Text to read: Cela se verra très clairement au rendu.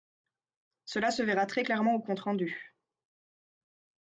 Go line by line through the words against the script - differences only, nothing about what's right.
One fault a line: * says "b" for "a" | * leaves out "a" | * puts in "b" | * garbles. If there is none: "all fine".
* puts in "compte"